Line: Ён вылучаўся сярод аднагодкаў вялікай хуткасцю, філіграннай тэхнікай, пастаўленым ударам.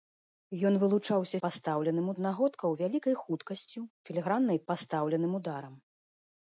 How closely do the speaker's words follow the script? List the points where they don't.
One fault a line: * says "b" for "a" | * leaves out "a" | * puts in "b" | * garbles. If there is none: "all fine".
* says "пастаўленым" for "сярод"
* leaves out "тэхнікай"